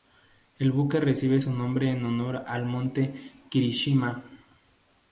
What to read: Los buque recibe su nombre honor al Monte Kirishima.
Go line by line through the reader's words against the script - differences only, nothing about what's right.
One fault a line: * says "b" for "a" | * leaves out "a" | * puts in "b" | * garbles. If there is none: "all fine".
* says "El" for "Los"
* puts in "en"